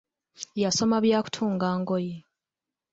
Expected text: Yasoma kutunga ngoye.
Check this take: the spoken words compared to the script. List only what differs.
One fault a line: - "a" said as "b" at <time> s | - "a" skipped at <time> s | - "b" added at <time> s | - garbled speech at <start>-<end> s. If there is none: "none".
- "bya" added at 1.1 s